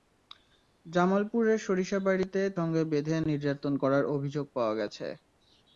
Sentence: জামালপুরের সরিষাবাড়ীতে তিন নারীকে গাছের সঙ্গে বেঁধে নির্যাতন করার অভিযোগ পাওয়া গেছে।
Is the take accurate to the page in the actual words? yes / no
no